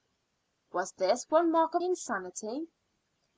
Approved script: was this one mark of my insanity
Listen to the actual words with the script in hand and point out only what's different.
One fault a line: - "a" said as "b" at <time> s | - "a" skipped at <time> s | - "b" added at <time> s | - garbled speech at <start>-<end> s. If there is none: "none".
- "my" skipped at 1.8 s